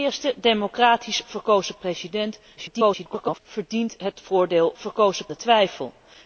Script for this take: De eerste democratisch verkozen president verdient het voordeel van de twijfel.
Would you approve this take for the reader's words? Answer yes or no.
no